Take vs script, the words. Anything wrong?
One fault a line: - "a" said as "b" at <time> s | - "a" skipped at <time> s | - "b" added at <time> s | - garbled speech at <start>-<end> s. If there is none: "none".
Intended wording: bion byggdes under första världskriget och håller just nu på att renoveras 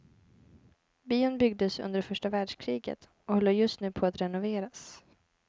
none